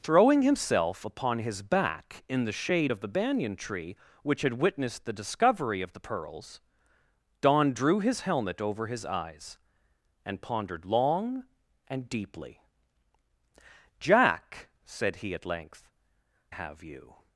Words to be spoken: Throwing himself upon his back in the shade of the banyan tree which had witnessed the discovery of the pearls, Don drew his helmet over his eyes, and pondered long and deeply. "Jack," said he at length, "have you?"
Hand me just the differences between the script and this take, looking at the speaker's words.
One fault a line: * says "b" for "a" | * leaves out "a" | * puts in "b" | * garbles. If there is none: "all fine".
all fine